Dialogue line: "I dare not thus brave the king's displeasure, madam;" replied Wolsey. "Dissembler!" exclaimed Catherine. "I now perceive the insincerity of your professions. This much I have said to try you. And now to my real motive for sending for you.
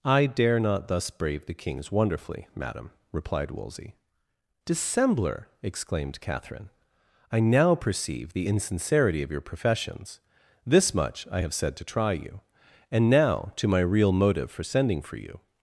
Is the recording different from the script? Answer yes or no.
yes